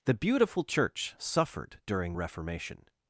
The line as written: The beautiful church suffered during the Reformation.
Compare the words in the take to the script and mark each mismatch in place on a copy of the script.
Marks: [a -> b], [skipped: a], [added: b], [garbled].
The beautiful church suffered during [skipped: the] Reformation.